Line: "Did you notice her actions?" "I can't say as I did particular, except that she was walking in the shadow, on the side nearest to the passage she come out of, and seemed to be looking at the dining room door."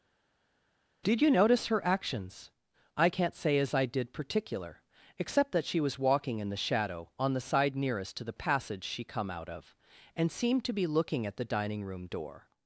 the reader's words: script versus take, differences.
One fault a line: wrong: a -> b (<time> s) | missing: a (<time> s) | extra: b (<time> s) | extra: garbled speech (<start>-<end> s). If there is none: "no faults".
no faults